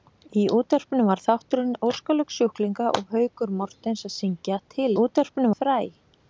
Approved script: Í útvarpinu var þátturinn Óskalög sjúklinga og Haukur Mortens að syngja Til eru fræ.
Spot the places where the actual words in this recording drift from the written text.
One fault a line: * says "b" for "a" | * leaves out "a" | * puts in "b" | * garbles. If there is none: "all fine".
* says "útvarpinu" for "eru"